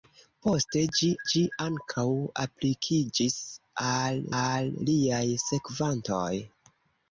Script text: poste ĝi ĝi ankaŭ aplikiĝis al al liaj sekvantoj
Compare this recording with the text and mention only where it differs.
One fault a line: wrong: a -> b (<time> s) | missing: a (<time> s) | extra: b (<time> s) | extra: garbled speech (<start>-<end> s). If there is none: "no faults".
no faults